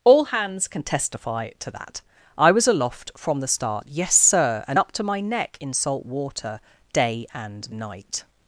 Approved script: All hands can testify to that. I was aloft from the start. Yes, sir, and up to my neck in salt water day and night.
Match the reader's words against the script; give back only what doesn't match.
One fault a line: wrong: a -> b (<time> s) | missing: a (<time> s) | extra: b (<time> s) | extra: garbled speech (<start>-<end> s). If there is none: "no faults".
no faults